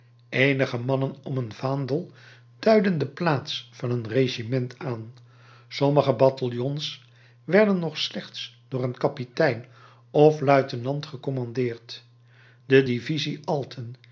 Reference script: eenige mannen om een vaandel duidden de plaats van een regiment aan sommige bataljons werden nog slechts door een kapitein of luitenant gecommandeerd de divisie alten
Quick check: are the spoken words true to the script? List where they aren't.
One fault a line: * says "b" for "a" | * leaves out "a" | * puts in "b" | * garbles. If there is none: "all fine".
all fine